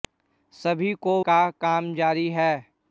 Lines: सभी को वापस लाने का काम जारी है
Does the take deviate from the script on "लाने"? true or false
true